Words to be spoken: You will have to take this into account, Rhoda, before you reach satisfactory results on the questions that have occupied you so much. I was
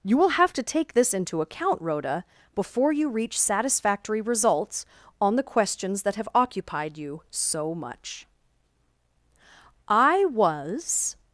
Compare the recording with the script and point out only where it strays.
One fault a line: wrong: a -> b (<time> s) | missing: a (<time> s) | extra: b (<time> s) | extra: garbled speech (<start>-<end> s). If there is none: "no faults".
no faults